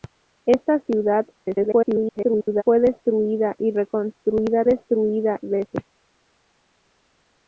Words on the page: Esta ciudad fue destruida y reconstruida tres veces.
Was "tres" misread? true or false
true